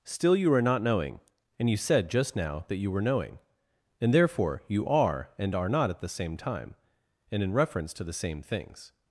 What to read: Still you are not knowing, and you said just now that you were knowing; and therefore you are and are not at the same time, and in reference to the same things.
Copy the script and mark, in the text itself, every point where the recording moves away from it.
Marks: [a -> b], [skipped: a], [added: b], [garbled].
Still you are not knowing, and you said just now that you were knowing; and therefore you are and are not at the same time, and in reference to the same things.